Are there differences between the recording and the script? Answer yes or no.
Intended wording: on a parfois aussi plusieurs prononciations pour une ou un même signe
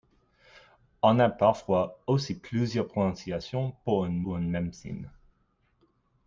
no